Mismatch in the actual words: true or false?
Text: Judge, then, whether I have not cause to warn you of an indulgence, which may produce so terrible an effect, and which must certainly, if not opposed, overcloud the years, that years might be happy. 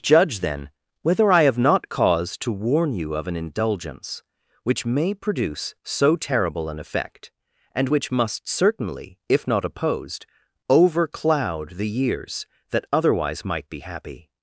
true